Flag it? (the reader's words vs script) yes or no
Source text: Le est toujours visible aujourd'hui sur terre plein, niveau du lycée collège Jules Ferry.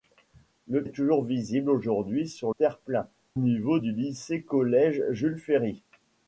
no